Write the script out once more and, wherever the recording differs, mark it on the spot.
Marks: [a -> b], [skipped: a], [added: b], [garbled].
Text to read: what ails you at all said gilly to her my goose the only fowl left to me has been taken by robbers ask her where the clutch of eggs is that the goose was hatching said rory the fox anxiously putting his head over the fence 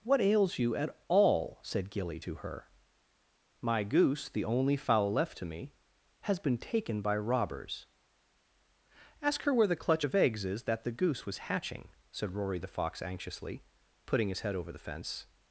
what ails you at all said gilly to her my goose the only fowl left to me has been taken by robbers ask her where the clutch of eggs is that the goose was hatching said rory the fox anxiously putting his head over the fence